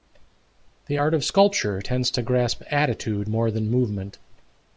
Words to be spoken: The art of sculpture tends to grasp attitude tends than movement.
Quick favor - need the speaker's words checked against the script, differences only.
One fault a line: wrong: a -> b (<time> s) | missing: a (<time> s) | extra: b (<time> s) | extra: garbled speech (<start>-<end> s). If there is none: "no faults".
wrong: tends -> more (3.3 s)